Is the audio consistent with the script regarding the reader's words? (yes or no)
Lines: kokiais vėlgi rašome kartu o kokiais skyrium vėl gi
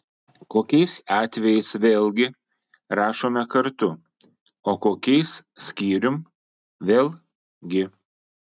no